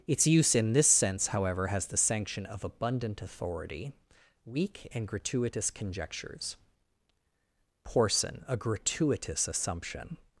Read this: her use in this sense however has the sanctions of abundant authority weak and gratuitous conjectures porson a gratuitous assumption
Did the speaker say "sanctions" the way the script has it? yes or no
no